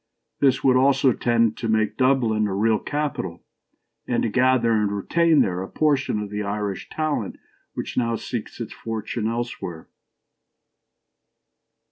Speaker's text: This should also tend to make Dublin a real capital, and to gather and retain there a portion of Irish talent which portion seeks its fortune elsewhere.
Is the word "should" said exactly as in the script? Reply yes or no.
no